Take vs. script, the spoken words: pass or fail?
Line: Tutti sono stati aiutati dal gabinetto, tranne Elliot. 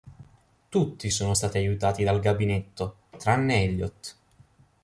pass